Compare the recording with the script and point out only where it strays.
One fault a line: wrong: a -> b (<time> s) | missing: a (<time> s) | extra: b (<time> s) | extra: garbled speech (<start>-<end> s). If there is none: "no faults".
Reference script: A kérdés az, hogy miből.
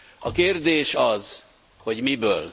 no faults